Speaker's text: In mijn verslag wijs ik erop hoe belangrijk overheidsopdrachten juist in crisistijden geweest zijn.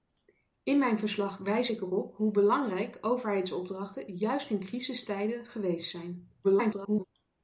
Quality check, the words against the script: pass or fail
fail